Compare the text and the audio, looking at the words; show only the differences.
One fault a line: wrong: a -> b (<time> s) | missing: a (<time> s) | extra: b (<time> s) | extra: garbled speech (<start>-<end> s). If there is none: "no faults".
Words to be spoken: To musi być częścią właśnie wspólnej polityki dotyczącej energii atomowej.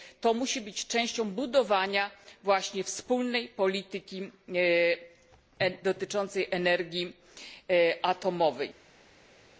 extra: budowania (1.3 s)